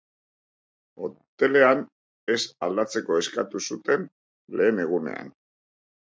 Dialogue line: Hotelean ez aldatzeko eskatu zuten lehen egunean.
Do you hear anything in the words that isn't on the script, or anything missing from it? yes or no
no